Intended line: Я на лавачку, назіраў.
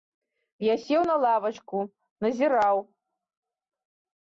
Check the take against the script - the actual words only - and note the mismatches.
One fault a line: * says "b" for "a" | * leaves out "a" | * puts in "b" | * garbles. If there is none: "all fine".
* puts in "сеў"